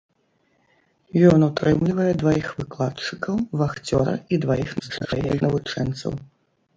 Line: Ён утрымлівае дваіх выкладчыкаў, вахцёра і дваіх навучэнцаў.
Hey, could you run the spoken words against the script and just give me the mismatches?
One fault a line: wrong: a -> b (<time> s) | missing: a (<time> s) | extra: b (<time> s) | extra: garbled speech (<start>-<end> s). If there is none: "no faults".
extra: garbled speech (4.8-5.4 s)